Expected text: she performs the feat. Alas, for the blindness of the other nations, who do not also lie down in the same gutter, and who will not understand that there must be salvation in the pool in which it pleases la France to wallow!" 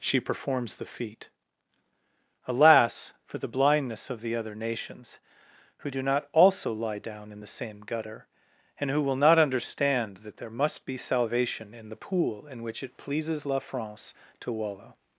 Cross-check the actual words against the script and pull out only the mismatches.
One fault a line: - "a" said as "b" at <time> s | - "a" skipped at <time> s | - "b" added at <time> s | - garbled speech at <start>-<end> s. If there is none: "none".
none